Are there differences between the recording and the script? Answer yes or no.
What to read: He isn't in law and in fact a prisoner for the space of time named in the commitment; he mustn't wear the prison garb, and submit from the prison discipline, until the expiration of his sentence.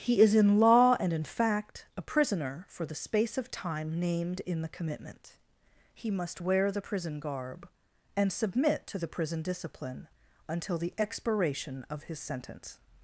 yes